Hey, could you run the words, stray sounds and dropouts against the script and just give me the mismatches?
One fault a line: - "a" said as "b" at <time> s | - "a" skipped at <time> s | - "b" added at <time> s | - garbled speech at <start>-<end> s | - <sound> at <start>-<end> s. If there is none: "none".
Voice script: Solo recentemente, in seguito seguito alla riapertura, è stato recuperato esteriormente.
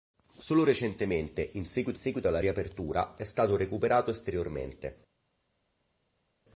none